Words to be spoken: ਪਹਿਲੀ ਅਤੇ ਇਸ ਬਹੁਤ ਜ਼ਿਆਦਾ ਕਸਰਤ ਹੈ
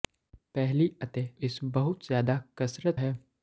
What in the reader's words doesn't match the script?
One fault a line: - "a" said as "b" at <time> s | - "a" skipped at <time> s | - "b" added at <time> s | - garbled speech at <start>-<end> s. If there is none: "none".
none